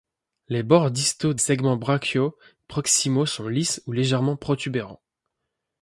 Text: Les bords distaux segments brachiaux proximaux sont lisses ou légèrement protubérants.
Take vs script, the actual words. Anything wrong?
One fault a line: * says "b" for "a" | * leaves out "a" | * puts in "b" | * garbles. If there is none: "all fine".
all fine